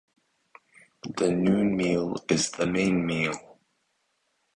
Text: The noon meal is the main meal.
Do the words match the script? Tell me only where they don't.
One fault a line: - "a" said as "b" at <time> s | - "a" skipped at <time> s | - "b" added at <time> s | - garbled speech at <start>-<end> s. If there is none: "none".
none